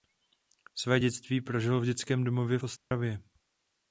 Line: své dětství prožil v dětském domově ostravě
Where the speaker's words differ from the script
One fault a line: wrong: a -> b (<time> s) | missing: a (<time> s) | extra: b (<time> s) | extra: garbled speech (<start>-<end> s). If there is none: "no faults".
no faults